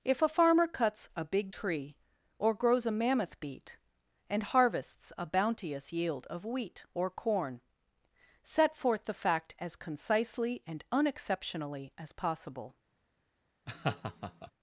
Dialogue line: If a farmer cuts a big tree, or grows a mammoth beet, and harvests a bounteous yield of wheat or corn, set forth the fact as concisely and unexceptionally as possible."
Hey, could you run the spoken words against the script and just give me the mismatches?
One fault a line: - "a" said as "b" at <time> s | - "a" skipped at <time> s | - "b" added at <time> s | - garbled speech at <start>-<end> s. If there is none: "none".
none